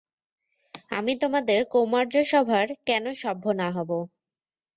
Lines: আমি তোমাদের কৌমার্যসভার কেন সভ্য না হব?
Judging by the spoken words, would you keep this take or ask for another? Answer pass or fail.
pass